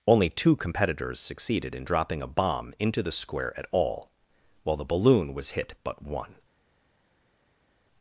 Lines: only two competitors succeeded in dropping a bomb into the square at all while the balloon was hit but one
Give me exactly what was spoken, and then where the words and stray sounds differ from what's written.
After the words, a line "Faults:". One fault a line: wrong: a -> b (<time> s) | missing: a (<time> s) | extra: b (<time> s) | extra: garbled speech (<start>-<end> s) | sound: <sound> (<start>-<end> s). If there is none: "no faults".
only two competitors succeeded in dropping a bomb into the square at all while the balloon was hit but one
Faults:
no faults